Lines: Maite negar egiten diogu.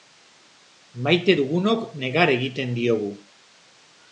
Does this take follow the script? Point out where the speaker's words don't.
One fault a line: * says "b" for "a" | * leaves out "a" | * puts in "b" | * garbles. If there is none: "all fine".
* puts in "dugunok"